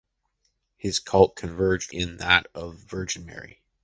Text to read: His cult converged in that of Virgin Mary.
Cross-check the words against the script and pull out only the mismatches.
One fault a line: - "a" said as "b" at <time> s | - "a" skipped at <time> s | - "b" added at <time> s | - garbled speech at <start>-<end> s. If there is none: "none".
none